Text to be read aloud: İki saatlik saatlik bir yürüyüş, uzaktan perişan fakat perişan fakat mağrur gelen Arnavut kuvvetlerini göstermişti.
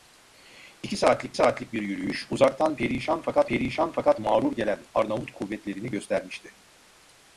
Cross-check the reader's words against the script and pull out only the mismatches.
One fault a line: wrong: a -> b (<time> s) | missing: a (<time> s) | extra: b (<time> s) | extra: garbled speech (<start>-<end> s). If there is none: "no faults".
no faults